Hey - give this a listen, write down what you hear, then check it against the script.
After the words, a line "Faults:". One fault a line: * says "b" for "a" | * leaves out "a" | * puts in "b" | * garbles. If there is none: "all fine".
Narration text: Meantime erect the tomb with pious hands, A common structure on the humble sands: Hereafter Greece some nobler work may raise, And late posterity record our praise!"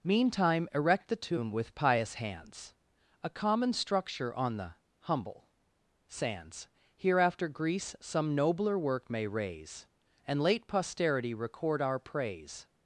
Meantime erect the tomb with pious hands, A common structure on the humble sands: Hereafter Greece some nobler work may raise, And late posterity record our praise!"
Faults:
all fine